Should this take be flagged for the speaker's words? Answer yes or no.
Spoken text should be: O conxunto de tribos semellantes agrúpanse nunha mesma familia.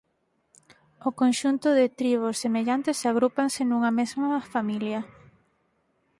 no